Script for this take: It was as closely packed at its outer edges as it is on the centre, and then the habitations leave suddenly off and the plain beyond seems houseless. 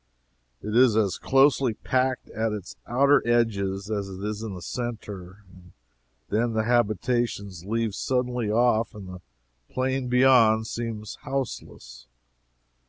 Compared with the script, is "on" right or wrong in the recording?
wrong